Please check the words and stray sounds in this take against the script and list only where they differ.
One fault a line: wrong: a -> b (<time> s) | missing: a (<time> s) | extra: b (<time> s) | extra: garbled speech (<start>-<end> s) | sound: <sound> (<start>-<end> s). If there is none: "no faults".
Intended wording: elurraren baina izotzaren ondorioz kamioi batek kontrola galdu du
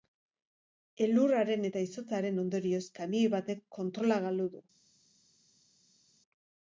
wrong: baina -> eta (1.7 s)